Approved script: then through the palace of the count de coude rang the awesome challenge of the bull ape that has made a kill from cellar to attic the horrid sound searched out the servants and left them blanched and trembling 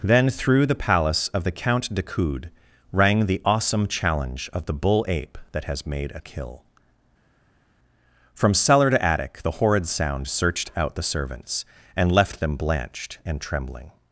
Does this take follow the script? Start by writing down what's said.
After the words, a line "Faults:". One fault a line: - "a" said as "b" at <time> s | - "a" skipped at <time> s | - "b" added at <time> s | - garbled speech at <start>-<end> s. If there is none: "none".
then through the palace of the count de coude rang the awesome challenge of the bull ape that has made a kill from cellar to attic the horrid sound searched out the servants and left them blanched and trembling
Faults:
none